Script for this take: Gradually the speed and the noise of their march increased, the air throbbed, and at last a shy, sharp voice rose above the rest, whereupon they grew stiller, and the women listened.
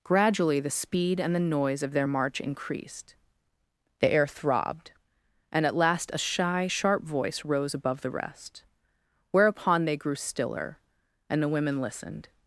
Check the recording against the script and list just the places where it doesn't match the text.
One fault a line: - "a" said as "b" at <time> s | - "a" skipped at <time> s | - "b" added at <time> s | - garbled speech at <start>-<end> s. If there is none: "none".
none